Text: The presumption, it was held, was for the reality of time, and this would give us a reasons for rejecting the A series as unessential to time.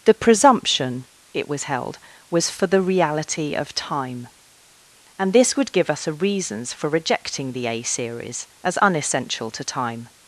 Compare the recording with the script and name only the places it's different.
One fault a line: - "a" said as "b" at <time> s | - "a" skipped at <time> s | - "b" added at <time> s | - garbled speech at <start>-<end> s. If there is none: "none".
none